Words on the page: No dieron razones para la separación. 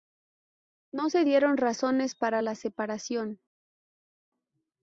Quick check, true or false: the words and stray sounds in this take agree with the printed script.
false